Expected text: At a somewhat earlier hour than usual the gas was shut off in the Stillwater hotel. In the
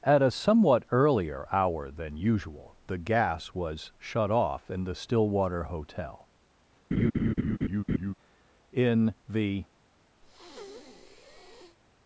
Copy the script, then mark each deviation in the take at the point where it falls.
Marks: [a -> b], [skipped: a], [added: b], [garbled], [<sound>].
At a somewhat earlier hour than usual the gas was shut off in the Stillwater hotel. [laugh] In the [breath]